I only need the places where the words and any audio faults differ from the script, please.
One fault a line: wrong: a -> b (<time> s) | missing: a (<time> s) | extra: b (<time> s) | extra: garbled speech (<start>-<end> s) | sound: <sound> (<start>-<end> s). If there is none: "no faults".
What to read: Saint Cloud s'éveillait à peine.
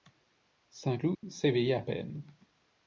sound: dropout (1.1-1.2 s)